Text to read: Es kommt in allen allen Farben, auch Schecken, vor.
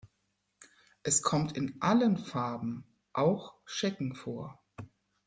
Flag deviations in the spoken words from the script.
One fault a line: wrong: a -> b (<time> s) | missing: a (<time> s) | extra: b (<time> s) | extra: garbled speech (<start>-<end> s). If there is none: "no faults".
missing: allen (2.2 s)